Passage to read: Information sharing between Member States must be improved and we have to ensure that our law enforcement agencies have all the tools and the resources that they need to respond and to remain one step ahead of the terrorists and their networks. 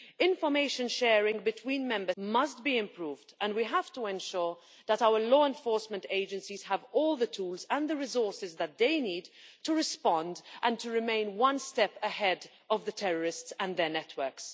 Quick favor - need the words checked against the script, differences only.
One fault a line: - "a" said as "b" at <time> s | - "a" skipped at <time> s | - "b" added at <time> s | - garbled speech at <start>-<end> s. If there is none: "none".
- "States" skipped at 2.1 s